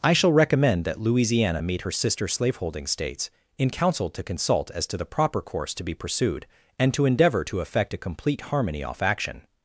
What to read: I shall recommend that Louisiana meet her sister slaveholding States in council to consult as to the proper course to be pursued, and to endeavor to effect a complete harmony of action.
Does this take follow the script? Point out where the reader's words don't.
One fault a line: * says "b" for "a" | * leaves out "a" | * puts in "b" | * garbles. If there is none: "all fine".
* says "off" for "of"